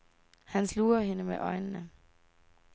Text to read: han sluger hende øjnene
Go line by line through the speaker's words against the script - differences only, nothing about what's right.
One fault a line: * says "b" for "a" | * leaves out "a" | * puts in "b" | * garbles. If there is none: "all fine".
* puts in "med"